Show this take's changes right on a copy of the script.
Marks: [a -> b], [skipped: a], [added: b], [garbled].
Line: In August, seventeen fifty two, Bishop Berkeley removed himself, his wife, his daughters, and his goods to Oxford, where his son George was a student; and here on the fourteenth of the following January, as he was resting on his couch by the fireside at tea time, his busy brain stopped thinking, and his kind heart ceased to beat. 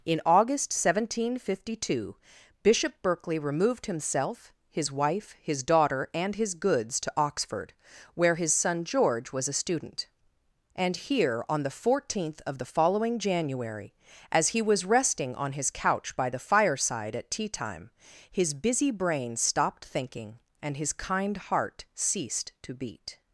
In August, seventeen fifty two, Bishop Berkeley removed himself, his wife, his [daughters, -> daughter] and his goods to Oxford, where his son George was a student; and here on the fourteenth of the following January, as he was resting on his couch by the fireside at tea time, his busy brain stopped thinking, and his kind heart ceased to beat.